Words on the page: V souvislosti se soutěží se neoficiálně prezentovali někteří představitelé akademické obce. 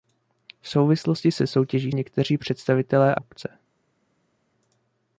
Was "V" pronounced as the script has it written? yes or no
yes